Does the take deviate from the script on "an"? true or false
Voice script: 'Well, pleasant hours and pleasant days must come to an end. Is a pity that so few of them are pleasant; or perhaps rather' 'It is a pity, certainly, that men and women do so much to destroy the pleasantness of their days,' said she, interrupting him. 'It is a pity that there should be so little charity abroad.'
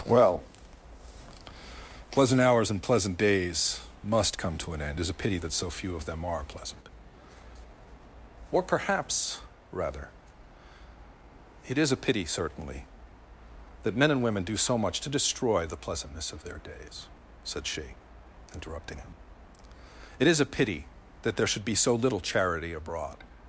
false